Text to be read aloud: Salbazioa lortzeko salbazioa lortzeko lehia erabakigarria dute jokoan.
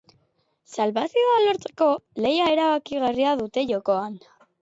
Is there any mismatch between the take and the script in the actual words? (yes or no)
yes